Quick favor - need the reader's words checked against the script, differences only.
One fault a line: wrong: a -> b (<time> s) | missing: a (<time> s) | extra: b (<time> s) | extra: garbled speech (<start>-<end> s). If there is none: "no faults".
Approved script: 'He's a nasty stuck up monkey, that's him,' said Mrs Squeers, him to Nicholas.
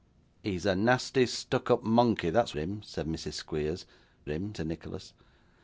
no faults